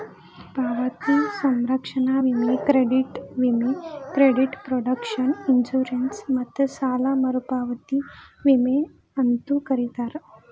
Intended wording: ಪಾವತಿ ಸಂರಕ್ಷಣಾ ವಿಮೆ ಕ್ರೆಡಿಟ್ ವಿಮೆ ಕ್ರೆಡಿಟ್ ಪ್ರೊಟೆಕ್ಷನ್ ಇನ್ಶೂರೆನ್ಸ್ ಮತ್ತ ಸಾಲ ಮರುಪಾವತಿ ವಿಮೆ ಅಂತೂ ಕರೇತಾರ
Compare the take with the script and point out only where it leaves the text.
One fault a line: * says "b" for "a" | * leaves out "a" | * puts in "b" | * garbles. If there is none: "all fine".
all fine